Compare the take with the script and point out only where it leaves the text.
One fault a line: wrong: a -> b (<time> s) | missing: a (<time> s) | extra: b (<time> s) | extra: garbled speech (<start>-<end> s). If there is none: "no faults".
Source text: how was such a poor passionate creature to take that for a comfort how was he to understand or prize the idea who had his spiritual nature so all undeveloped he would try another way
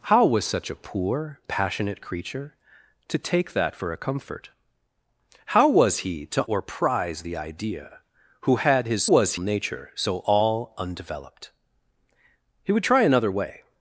missing: understand (6.5 s)
wrong: spiritual -> was (9.0 s)